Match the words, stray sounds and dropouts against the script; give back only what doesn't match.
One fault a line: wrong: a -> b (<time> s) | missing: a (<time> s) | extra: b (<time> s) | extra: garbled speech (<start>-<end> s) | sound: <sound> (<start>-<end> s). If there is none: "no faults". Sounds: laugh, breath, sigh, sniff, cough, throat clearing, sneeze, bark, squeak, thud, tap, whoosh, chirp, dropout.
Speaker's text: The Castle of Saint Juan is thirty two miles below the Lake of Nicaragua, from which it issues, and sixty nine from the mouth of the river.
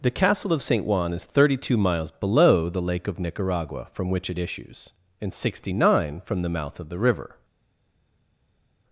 no faults